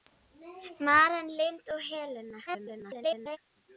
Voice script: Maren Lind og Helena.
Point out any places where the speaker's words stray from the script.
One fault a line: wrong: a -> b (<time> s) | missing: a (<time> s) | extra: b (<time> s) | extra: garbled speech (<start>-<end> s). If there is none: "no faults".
extra: garbled speech (2.5-3.4 s)